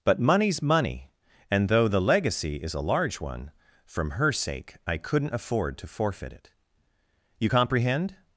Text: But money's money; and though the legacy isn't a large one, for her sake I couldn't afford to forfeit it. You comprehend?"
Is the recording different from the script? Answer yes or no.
yes